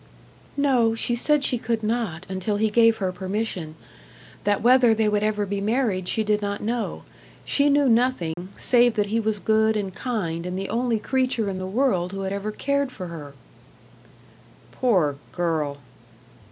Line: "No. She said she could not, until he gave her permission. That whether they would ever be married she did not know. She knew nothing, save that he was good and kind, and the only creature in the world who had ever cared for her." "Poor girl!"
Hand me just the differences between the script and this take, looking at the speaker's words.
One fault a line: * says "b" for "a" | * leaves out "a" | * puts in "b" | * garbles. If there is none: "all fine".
all fine